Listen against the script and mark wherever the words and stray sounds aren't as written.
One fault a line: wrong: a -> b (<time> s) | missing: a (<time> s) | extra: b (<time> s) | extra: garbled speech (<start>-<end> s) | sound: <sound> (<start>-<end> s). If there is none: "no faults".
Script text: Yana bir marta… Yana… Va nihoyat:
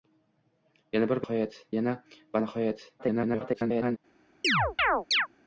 wrong: marta -> nihoyat (1.2 s)
extra: garbled speech (3.0-4.0 s)
sound: chirp (4.4-5.3 s)